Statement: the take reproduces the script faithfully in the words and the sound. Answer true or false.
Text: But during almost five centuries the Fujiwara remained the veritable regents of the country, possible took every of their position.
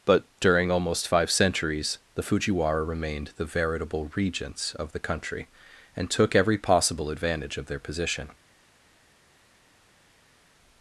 false